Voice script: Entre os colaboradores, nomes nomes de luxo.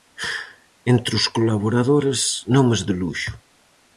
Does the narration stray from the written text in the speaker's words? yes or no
yes